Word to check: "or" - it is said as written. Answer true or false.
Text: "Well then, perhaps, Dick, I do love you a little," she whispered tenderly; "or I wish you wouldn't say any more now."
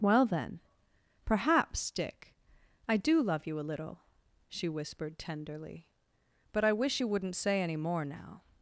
false